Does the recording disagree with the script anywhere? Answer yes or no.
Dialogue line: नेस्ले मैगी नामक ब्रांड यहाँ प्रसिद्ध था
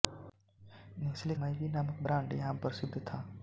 no